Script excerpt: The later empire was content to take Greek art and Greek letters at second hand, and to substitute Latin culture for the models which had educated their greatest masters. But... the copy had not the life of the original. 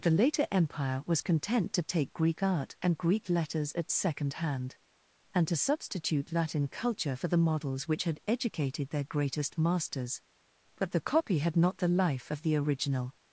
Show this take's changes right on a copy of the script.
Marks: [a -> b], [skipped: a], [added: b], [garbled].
The later empire was content to take Greek art and Greek letters at second hand, and to substitute Latin culture for the models which had educated their greatest masters. But... the copy had not the life of the original.